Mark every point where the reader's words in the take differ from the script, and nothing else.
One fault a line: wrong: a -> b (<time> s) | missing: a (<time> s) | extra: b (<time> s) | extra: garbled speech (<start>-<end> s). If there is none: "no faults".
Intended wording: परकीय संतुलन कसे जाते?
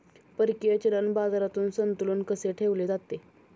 extra: चलन बाजारात (0.8 s)
extra: ठेवले (2.5 s)